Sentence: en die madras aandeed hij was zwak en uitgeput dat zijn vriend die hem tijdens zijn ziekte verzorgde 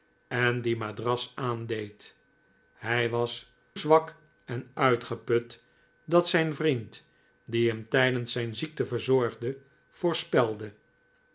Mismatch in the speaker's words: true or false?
false